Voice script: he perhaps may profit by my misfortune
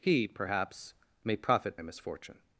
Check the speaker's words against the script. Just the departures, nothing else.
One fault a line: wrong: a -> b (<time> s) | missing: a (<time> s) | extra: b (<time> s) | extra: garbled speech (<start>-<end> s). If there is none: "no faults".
missing: by my (1.8 s)